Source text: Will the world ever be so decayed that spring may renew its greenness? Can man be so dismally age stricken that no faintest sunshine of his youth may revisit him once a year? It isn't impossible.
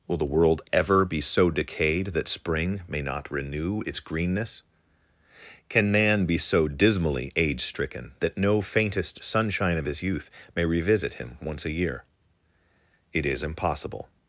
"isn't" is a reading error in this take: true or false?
true